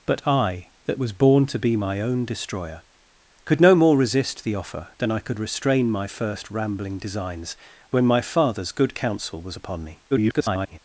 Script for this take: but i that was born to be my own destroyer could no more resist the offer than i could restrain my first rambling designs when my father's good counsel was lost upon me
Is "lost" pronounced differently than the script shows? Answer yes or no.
yes